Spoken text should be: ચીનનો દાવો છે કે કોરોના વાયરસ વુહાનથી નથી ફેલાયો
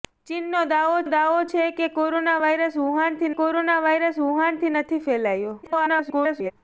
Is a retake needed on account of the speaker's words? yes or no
yes